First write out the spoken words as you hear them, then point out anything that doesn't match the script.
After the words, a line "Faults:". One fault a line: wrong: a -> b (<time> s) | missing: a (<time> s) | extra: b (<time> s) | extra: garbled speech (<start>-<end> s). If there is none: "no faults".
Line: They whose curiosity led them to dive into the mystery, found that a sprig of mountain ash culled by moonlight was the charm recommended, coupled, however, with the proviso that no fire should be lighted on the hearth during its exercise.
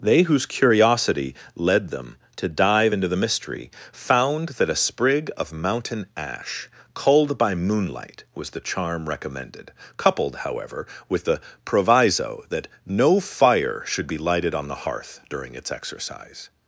They whose curiosity led them to dive into the mystery, found that a sprig of mountain ash culled by moonlight was the charm recommended, coupled, however, with the proviso that no fire should be lighted on the hearth during its exercise.
Faults:
no faults